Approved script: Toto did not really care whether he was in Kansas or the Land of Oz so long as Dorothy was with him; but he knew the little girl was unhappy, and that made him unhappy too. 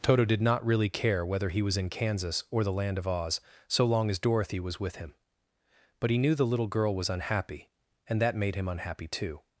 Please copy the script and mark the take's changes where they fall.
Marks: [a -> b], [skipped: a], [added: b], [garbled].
Toto did not really care whether he was in Kansas or the Land of Oz so long as Dorothy was with him; but he knew the little girl was unhappy, and that made him unhappy too.